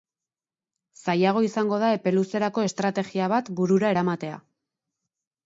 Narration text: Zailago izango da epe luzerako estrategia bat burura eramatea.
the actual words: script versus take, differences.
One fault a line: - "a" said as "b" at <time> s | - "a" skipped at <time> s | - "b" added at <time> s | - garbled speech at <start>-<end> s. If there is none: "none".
none